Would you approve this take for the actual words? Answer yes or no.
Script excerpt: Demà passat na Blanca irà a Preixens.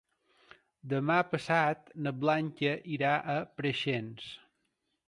yes